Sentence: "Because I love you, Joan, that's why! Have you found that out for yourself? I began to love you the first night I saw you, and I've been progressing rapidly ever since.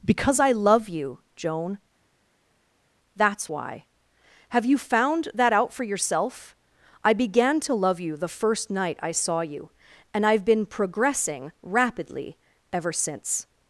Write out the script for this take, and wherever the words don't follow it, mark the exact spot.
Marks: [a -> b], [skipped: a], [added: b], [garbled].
"Because I love you, Joan, that's why! Have you found that out for yourself? I began to love you the first night I saw you, and I've been progressing rapidly ever since.